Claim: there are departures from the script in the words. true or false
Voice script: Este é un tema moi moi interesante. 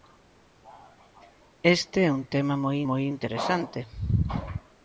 false